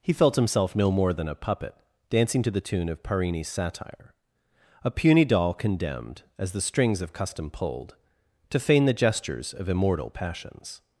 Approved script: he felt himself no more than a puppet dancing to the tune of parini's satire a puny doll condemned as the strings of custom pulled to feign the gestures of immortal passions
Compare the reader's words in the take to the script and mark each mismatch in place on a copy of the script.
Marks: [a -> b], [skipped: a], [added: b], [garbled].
he felt himself no more than a puppet dancing to the tune of parini's satire a puny doll condemned as the strings of custom pulled to feign the gestures of immortal passions